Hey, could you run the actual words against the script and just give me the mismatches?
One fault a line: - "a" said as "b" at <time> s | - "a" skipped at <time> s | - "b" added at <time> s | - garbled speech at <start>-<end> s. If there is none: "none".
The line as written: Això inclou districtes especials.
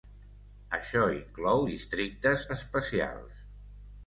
none